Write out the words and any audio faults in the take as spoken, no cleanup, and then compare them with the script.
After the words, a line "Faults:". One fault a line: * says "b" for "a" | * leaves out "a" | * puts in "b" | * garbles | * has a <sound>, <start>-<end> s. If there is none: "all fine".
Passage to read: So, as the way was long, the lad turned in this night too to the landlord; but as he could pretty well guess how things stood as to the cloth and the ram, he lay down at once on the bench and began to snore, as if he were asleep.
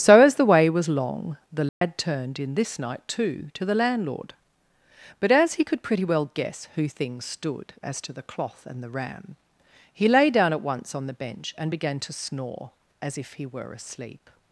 So, as the way was long, the lad turned in this night too to the landlord; but as he could pretty well guess who things stood as to the cloth and the ram, he lay down at once on the bench and began to snore, as if he were asleep.
Faults:
* has a dropout, 1.7-1.8 s
* says "who" for "how"